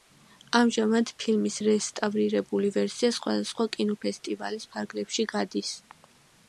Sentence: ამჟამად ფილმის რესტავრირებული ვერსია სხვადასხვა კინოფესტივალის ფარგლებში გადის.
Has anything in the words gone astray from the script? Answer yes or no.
no